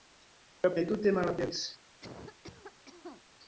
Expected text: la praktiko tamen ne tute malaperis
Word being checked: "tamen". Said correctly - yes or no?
no